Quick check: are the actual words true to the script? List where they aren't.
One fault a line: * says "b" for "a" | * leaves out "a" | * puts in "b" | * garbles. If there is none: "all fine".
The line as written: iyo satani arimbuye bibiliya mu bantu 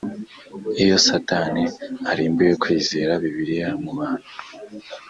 * puts in "kwizera"